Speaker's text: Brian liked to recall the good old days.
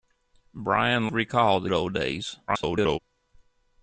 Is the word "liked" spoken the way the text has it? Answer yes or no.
no